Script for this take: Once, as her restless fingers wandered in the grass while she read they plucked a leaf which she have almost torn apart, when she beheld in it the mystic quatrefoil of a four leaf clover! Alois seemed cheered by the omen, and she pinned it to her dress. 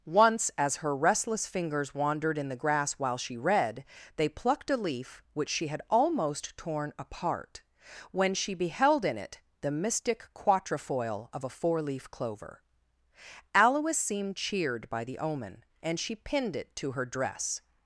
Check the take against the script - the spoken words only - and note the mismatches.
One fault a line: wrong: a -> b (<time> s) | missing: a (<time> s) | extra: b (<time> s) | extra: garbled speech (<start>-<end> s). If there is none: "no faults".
wrong: have -> had (5.7 s)